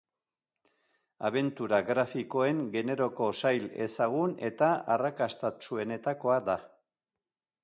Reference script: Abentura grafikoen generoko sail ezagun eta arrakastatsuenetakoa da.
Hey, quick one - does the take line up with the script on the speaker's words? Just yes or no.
yes